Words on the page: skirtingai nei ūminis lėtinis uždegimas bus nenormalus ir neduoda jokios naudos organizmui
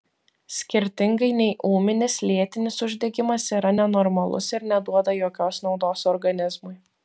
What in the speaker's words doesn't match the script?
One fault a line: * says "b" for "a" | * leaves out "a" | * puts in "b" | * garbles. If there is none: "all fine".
* says "yra" for "bus"